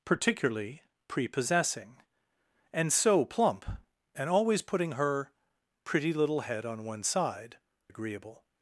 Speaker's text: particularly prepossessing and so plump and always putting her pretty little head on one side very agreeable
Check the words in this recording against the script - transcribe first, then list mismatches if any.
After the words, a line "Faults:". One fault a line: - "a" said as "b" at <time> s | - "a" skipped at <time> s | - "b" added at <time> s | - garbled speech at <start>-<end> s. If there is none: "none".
particularly prepossessing and so plump and always putting her pretty little head on one side agreeable
Faults:
- "very" skipped at 7.6 s